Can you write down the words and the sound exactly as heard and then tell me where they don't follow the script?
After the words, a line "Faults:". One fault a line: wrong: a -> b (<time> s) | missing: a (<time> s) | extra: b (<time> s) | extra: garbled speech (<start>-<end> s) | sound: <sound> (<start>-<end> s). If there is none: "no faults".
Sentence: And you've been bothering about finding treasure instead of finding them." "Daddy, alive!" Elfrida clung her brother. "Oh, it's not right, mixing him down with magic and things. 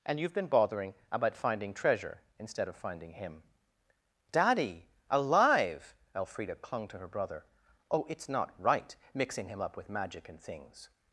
And you've been bothering about finding treasure instead of finding him." "Daddy, alive!" Elfrida clung to her brother. "Oh, it's not right, mixing him up with magic and things.
Faults:
wrong: them -> him (3.1 s)
extra: to (6.9 s)
wrong: down -> up (9.6 s)